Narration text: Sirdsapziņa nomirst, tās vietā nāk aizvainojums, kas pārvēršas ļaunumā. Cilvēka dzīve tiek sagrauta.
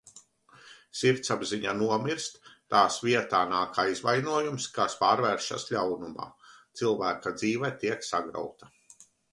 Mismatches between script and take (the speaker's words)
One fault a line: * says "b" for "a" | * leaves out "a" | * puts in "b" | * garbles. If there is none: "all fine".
all fine